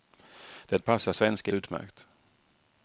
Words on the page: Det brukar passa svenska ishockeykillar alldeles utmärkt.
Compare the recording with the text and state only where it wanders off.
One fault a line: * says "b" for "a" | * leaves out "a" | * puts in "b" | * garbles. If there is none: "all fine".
* leaves out "brukar"
* leaves out "ishockeykillar alldeles"